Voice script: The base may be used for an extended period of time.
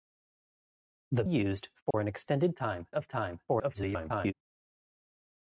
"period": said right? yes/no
no